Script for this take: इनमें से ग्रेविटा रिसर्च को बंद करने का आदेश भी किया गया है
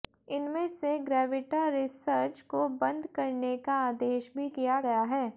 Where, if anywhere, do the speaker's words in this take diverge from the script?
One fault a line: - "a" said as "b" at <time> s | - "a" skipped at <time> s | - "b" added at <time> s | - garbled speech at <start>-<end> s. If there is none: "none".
none